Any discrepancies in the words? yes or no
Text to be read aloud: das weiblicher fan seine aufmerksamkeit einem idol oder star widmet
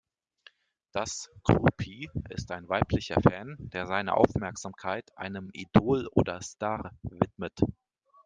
yes